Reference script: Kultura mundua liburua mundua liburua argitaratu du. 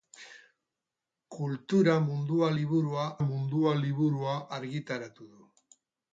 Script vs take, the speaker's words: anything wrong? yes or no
no